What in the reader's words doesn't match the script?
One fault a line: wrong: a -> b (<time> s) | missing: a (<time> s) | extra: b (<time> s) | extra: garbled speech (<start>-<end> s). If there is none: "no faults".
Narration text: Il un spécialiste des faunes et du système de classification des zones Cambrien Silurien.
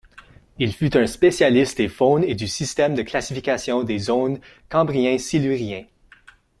extra: fut (0.7 s)